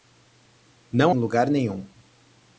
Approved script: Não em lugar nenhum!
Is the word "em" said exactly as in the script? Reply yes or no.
yes